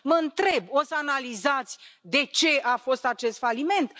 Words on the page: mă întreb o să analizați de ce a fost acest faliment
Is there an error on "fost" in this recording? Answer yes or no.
no